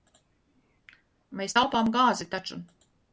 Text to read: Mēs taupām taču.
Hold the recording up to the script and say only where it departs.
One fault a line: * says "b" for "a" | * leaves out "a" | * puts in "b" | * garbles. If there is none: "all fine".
* puts in "gāzi"